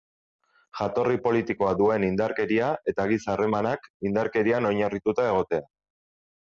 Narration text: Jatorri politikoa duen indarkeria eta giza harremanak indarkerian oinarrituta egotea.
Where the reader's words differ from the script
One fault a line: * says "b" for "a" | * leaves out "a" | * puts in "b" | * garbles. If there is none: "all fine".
all fine